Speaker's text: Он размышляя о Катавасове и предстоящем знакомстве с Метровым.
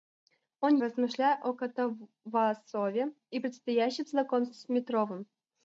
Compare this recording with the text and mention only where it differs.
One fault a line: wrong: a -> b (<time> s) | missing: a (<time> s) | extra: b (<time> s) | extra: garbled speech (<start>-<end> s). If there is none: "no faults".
no faults